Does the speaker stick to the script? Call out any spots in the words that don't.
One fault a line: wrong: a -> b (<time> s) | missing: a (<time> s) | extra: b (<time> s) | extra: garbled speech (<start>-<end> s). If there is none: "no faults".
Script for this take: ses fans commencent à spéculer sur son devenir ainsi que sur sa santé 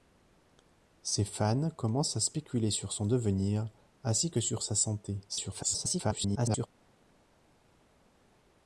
extra: garbled speech (5.3-6.7 s)